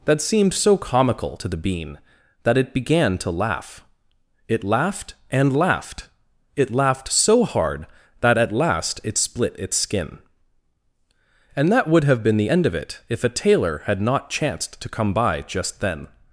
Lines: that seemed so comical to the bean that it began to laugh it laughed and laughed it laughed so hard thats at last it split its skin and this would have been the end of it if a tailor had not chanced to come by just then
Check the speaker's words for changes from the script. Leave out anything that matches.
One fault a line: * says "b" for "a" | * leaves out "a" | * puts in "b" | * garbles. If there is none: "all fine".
* says "that" for "thats"
* says "that" for "this"